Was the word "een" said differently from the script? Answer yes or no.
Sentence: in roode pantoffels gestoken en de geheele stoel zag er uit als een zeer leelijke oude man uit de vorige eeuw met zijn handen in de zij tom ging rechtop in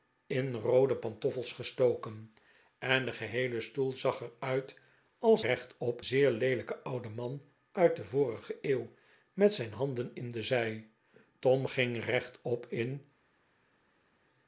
yes